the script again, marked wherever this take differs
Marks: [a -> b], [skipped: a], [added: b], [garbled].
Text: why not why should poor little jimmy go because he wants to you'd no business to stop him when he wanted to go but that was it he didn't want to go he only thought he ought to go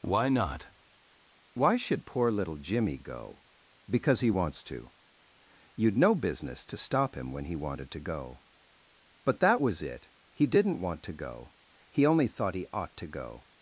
why not why should poor little jimmy go because he wants to you'd no business to stop him when he wanted to go but that was it he didn't want to go he only thought he ought to go